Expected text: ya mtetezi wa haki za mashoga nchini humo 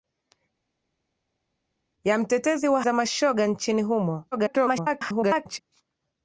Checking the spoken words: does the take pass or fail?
fail